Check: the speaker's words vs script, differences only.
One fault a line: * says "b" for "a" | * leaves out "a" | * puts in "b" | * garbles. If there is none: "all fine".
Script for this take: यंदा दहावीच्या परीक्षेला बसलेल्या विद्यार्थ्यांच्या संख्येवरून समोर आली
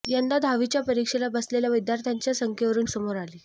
all fine